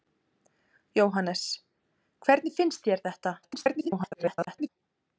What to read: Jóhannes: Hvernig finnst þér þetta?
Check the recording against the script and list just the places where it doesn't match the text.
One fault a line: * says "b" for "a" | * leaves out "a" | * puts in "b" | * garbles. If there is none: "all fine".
* garbles